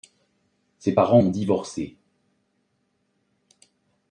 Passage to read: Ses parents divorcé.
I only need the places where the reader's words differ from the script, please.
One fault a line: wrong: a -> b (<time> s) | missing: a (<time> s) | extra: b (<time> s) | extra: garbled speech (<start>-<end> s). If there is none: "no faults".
extra: ont (1.2 s)